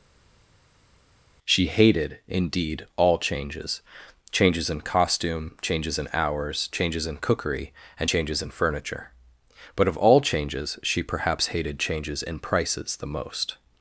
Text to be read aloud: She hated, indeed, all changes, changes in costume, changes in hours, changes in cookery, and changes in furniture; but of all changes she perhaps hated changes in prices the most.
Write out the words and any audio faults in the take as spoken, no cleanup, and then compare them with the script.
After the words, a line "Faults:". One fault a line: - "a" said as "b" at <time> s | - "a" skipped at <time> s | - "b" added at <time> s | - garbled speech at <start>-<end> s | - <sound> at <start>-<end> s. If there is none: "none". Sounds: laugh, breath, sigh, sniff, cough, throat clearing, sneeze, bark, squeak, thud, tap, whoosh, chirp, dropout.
She hated, indeed, all changes, changes in costume, changes in hours, changes in cookery, and changes in furniture; but of all changes she perhaps hated changes in prices the most.
Faults:
none